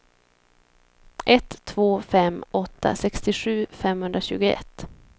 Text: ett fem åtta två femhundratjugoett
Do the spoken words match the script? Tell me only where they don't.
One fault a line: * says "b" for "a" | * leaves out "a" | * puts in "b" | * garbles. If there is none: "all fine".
* puts in "två"
* says "sextiosju" for "två"